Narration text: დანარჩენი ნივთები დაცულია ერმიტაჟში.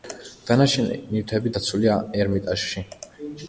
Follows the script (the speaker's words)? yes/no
yes